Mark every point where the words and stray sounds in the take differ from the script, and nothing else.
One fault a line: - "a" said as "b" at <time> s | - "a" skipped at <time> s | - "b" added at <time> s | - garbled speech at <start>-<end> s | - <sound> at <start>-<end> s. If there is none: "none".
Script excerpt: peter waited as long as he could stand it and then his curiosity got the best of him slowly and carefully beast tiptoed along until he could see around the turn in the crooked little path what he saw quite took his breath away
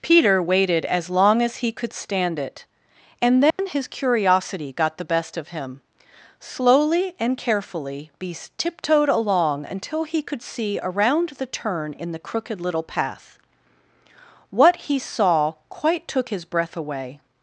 - dropout at 3.5-3.6 s